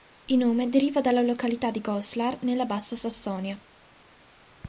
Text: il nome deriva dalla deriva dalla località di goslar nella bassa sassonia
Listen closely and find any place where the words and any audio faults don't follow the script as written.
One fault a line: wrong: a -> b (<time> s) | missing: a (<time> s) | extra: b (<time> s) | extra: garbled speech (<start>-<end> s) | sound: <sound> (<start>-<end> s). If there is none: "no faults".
missing: deriva dalla (1.2 s)